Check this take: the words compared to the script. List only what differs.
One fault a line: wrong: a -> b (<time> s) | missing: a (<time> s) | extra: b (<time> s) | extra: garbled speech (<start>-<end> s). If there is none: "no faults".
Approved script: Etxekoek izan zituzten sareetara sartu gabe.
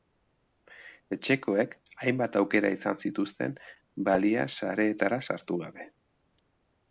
extra: hainbat aukera (2.0 s)
extra: balia (4.1 s)